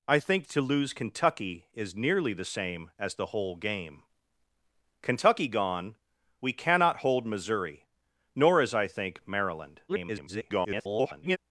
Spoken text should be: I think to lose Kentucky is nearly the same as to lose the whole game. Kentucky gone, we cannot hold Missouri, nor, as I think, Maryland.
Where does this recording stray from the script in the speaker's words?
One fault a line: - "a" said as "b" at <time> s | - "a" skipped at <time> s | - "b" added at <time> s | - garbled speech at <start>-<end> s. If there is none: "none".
- "to lose" skipped at 3.1 s
- garbled speech at 9.9-11.4 s